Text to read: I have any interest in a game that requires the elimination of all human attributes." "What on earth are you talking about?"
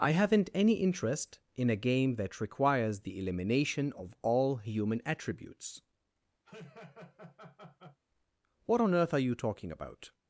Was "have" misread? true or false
true